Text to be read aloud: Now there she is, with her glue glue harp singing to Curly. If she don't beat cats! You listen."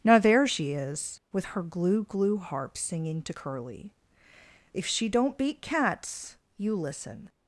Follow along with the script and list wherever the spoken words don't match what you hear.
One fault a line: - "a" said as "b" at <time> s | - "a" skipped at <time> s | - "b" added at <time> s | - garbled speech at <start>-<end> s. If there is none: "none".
none